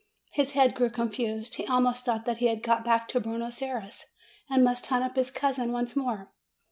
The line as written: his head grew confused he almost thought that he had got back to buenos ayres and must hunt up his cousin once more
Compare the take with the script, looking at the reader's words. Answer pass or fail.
pass